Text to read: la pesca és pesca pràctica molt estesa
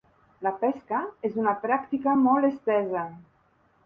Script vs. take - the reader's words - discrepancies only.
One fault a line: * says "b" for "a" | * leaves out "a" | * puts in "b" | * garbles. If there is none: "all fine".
* says "una" for "pesca"